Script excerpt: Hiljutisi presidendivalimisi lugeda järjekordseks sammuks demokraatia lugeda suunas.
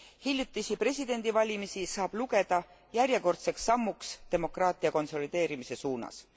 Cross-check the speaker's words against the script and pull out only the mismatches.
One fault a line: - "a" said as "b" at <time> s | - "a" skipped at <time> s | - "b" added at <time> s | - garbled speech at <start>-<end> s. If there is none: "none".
- "saab" added at 1.9 s
- "lugeda" said as "konsolideerimise" at 4.9 s